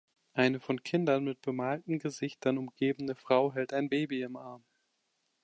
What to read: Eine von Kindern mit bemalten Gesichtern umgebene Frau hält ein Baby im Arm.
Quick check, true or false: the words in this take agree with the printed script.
true